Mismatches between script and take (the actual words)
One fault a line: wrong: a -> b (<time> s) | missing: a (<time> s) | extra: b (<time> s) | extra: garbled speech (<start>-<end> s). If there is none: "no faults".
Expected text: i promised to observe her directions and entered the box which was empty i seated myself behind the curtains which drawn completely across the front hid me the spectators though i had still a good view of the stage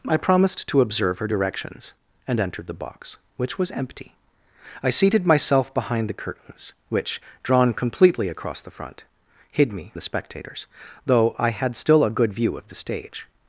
no faults